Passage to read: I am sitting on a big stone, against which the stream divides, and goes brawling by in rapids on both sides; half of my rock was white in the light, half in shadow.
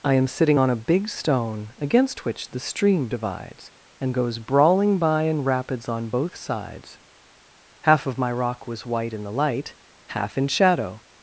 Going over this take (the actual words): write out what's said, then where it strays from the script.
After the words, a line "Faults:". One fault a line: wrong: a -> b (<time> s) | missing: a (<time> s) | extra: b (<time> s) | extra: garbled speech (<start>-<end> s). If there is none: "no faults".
I am sitting on a big stone, against which the stream divides, and goes brawling by in rapids on both sides; half of my rock was white in the light, half in shadow.
Faults:
no faults